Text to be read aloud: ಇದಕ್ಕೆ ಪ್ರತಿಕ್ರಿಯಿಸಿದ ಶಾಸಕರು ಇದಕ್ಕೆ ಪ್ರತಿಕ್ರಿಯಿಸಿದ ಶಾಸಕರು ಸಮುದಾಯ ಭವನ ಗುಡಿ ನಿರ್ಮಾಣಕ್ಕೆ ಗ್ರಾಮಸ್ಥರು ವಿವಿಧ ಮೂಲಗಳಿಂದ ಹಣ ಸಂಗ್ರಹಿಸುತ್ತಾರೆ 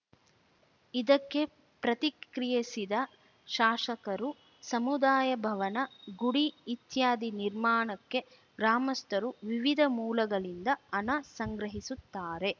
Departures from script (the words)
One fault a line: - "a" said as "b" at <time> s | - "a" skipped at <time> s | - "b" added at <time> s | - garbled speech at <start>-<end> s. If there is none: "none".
- "ಇದಕ್ಕೆ ಪ್ರತಿಕ್ರಿಯಿಸಿದ ಶಾಸಕರು" skipped at 4.3 s
- "ಇತ್ಯಾದಿ" added at 6.7 s